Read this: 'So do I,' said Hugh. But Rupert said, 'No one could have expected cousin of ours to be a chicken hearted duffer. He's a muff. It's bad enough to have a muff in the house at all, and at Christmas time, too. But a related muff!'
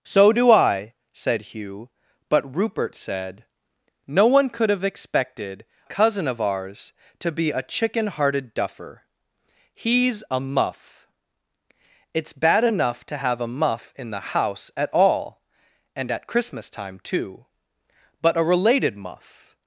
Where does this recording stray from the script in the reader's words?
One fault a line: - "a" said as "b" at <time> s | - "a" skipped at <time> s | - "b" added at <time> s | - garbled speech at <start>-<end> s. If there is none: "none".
none